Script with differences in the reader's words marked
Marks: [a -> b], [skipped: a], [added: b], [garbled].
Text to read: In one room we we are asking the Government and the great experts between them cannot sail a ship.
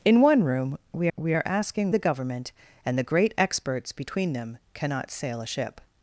In one room we we are asking the Government and the great experts between them cannot sail a ship.